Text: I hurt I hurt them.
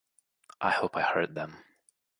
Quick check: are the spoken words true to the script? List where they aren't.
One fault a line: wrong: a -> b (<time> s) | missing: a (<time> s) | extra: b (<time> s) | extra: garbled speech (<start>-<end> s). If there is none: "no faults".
wrong: hurt -> hope (0.7 s)